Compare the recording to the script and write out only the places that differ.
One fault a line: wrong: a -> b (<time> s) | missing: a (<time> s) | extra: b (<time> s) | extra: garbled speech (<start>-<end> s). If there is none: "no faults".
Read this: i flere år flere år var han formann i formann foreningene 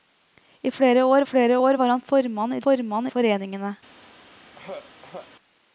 no faults